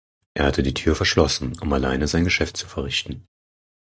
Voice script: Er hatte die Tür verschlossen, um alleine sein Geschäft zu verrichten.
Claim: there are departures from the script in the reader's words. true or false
false